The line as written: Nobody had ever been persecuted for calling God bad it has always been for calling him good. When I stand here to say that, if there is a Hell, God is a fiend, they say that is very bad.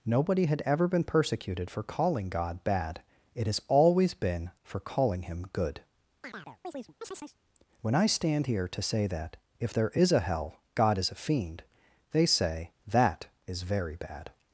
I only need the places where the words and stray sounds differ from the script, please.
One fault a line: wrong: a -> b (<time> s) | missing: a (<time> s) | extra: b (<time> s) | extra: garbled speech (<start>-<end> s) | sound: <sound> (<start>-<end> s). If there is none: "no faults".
sound: chirp (6.2-7.4 s)